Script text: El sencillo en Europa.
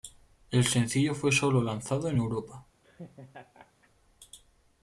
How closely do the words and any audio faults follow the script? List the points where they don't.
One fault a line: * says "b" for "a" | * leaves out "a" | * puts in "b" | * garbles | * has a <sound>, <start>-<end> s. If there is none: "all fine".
* puts in "fue solo lanzado"
* has a laugh, 2.8-3.9 s